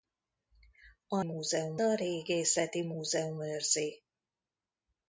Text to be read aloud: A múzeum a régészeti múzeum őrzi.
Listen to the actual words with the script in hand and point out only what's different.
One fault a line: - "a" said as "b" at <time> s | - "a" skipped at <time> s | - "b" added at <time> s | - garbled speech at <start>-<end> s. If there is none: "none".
none